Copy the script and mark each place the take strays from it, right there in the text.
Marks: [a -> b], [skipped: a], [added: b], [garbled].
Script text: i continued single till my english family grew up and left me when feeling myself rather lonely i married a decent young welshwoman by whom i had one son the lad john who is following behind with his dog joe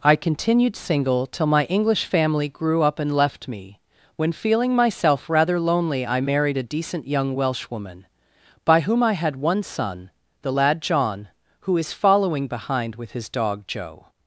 i continued single till my english family grew up and left me when feeling myself rather lonely i married a decent young welshwoman by whom i had one son the lad john who is following behind with his dog joe